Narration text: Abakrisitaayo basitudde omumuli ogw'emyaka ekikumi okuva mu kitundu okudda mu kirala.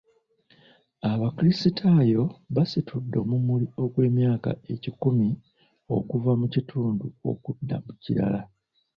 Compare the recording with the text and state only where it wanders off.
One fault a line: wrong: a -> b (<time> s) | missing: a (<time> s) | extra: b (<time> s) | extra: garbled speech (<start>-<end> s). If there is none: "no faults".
no faults